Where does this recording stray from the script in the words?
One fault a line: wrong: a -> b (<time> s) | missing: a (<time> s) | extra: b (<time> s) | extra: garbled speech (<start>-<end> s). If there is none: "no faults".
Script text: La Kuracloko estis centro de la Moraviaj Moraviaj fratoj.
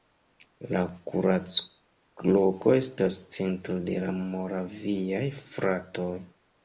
wrong: estis -> estas (2.8 s)
missing: Moraviaj (5.2 s)